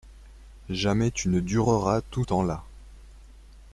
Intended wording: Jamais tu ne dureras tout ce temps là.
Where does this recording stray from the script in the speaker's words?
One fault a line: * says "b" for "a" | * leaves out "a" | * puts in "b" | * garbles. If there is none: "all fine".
* leaves out "ce"